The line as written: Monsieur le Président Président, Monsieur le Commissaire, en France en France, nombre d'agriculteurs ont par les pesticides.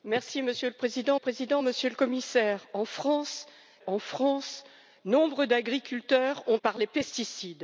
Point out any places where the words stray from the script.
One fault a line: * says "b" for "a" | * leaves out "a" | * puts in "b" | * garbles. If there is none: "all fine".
all fine